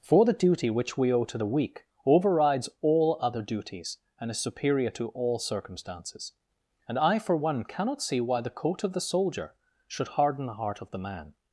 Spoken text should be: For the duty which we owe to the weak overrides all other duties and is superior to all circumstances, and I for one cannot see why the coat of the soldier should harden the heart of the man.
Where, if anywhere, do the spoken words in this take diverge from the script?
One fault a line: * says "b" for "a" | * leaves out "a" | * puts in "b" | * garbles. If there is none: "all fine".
all fine